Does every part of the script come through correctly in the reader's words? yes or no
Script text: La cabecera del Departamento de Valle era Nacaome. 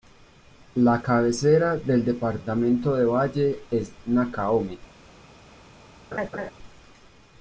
no